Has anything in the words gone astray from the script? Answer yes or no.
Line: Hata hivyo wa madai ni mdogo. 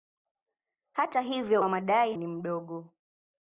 no